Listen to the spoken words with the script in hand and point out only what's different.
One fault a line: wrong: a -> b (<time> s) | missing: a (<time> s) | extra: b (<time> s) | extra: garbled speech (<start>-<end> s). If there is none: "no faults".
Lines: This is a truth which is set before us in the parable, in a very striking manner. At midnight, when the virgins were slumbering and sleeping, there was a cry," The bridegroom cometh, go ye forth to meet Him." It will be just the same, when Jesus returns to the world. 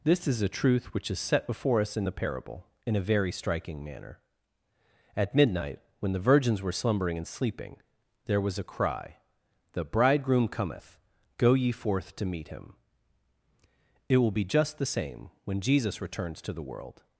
no faults